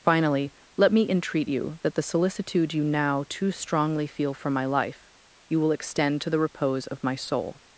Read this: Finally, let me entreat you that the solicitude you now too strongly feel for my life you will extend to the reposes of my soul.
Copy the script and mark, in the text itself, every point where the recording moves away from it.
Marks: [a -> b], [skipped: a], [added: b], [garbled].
Finally, let me entreat you that the solicitude you now too strongly feel for my life you will extend to the [reposes -> repose] of my soul.